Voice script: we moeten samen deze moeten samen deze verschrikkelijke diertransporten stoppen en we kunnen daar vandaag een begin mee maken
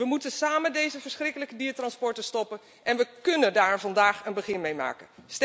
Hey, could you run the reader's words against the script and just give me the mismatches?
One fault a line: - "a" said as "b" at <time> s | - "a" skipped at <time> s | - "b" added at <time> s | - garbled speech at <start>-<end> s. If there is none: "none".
- "moeten samen deze" skipped at 1.0 s